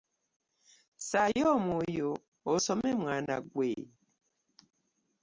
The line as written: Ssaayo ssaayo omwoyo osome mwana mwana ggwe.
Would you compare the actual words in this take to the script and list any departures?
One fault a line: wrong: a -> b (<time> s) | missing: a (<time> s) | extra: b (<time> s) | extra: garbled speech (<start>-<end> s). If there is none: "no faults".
missing: ssaayo (1.4 s)
missing: mwana (3.4 s)